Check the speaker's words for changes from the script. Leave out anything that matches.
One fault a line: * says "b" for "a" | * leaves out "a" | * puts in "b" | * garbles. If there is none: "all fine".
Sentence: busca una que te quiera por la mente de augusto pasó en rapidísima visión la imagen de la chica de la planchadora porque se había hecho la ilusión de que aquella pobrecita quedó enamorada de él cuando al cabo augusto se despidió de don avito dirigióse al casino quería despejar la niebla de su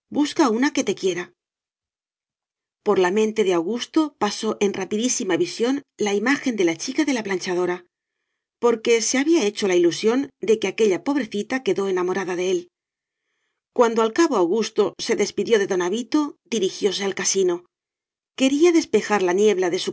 all fine